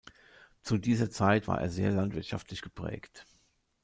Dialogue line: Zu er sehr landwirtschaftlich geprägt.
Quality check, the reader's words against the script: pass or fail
fail